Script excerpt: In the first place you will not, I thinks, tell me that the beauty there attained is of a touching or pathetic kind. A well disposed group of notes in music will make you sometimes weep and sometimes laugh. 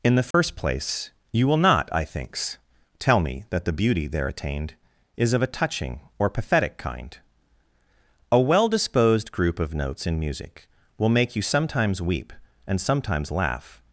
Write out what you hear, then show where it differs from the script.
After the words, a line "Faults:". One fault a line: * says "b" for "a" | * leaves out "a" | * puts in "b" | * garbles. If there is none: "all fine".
In the first place you will not, I thinks, tell me that the beauty there attained is of a touching or pathetic kind. A well disposed group of notes in music will make you sometimes weep and sometimes laugh.
Faults:
all fine